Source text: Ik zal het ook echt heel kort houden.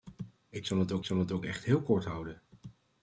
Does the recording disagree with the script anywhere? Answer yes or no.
yes